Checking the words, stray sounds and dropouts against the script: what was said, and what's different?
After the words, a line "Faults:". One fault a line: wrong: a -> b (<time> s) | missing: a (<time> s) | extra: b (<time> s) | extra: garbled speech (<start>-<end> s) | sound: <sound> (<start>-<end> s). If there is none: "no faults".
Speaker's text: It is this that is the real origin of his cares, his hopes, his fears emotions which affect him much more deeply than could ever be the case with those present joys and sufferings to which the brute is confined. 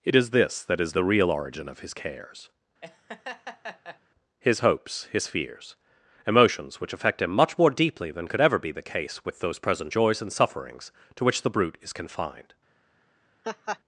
It is this that is the real origin of his cares, his hopes, his fears emotions which affect him much more deeply than could ever be the case with those present joys and sufferings to which the brute is confined.
Faults:
sound: laugh (2.8-4.0 s)
sound: laugh (13.4-13.8 s)